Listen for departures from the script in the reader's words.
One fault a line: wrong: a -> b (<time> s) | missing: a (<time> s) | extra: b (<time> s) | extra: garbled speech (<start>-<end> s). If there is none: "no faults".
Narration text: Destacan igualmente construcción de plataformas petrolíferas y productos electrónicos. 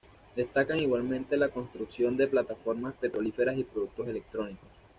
extra: la (1.4 s)